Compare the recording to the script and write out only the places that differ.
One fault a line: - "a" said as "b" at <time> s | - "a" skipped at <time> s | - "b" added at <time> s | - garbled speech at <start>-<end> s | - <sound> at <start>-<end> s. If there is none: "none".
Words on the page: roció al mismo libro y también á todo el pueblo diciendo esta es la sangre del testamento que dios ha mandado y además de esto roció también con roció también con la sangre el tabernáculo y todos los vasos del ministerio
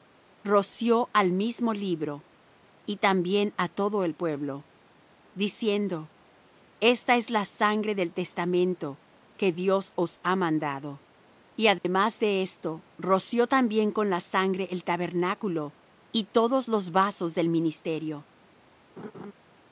- "os" added at 10.0 s
- dropout at 11.8-11.8 s
- "roció también con" skipped at 14.1 s
- laugh at 19.0-19.3 s